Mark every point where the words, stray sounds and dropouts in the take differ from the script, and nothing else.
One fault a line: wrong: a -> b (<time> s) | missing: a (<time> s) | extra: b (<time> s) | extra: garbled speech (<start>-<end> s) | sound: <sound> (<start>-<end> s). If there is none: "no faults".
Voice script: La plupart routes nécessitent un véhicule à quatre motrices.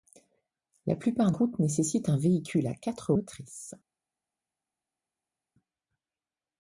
no faults